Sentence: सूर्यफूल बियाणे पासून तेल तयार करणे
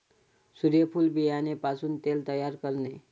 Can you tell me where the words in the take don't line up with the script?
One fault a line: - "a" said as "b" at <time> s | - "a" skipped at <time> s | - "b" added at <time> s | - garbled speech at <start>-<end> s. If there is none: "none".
none